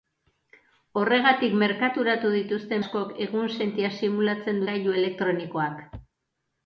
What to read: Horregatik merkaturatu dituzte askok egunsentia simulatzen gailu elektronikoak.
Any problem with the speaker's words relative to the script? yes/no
no